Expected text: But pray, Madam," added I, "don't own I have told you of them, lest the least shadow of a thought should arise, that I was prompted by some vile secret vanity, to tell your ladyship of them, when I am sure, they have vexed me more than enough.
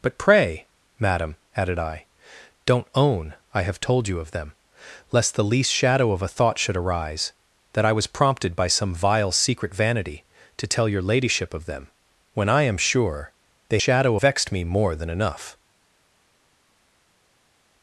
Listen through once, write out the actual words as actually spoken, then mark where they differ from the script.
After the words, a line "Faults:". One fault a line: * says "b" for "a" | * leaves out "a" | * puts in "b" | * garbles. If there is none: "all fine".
But pray, Madam," added I, "don't own I have told you of them, lest the least shadow of a thought should arise, that I was prompted by some vile secret vanity, to tell your ladyship of them, when I am sure, they shadow vexed me more than enough.
Faults:
* says "shadow" for "have"